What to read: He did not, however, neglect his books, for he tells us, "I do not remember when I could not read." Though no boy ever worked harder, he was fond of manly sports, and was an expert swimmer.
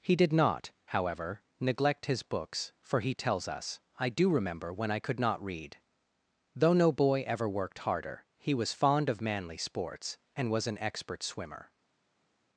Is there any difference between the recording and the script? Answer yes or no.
yes